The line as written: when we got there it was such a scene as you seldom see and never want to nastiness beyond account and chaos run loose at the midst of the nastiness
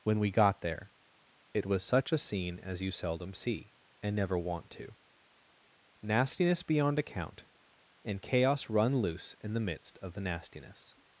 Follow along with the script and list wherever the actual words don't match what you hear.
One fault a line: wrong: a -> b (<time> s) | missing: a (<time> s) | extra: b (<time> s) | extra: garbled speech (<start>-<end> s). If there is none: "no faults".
wrong: at -> in (9.4 s)